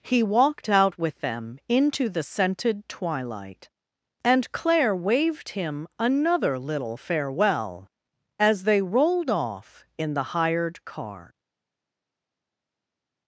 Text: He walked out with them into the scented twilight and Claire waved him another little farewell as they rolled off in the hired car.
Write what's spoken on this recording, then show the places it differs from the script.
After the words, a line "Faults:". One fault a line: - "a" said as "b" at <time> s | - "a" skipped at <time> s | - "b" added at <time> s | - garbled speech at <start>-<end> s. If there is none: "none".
He walked out with them into the scented twilight and Claire waved him another little farewell as they rolled off in the hired car.
Faults:
none